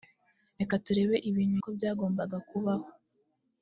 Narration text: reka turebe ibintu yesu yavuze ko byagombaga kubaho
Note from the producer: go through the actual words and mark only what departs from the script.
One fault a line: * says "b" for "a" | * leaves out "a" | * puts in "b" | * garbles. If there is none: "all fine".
* leaves out "yesu yavuze"